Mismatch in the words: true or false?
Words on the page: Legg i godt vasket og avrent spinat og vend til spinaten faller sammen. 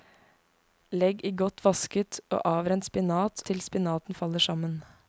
true